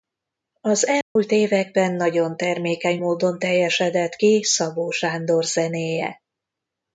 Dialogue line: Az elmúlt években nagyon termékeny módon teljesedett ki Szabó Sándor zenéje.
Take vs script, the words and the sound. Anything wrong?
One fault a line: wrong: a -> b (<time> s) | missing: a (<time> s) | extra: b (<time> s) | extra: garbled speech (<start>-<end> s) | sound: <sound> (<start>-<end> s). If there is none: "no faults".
sound: dropout (1.0-1.2 s)